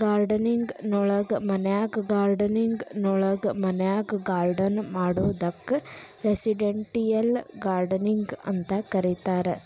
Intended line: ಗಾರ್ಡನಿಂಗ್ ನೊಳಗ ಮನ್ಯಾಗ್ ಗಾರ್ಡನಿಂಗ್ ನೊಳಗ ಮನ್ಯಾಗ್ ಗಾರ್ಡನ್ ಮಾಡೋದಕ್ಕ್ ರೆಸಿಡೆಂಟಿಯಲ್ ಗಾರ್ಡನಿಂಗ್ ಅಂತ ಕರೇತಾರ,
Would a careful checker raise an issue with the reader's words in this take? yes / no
no